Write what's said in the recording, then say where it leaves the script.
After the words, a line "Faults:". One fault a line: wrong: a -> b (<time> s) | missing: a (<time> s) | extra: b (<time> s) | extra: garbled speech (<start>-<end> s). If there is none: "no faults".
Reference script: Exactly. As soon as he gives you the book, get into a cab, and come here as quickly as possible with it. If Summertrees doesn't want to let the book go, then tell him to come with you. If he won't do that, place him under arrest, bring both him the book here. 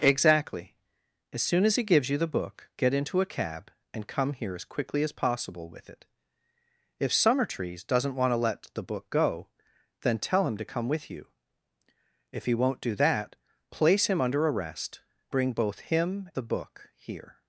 Exactly. As soon as he gives you the book, get into a cab, and come here as quickly as possible with it. If Summertrees doesn't want to let the book go, then tell him to come with you. If he won't do that, place him under arrest, bring both him the book here.
Faults:
no faults